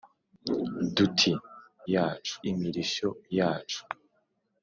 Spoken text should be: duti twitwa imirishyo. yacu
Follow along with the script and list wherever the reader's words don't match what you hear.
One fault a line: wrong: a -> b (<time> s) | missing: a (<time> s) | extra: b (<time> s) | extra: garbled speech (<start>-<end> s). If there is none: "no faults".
wrong: twitwa -> yacu (1.9 s)